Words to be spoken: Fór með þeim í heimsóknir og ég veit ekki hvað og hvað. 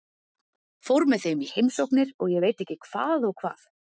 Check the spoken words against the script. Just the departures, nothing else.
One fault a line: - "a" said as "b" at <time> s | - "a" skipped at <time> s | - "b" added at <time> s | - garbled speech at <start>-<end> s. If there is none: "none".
none